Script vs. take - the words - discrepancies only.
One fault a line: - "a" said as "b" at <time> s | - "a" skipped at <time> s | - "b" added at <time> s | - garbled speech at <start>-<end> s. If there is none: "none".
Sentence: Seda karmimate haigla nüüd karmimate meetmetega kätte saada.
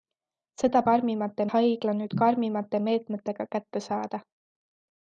none